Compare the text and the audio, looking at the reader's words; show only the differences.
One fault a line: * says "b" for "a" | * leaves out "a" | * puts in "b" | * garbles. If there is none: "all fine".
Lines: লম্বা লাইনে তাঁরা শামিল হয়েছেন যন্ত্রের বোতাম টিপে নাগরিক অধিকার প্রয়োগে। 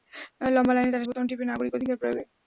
* leaves out "শামিল হয়েছেন যন্ত্রের"